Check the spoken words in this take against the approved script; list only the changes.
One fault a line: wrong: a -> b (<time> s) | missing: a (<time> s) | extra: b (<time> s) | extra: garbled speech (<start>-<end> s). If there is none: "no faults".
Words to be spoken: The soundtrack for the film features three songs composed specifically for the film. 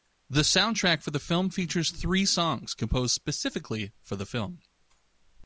no faults